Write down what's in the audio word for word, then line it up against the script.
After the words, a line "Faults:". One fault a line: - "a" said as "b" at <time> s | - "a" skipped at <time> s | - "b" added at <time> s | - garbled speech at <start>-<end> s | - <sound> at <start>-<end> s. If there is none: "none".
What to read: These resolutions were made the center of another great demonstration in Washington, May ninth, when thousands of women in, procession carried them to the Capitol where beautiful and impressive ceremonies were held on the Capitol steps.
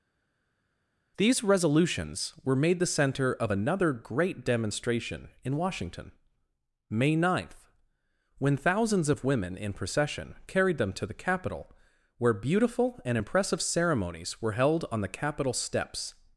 These resolutions were made the center of another great demonstration in Washington, May ninth, when thousands of women in, procession carried them to the Capitol where beautiful and impressive ceremonies were held on the Capitol steps.
Faults:
none